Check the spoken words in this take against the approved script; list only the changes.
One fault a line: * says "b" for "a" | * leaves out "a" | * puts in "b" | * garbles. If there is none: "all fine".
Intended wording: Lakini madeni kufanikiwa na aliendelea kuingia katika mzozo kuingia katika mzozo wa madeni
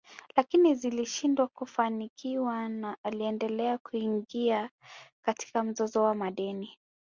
* says "zilishindwa" for "madeni"
* leaves out "kuingia katika mzozo"